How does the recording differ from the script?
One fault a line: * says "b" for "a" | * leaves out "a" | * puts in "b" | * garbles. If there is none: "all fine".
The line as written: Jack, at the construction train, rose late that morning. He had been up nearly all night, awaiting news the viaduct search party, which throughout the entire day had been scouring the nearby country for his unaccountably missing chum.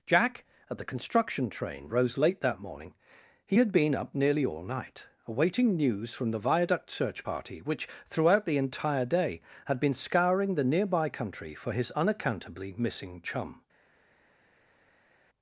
* puts in "from"